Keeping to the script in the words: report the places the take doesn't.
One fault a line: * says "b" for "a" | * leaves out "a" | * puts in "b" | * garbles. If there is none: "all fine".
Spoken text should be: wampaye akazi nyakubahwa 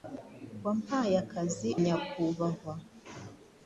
all fine